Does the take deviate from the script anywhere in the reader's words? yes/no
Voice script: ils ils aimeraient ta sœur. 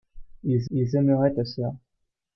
no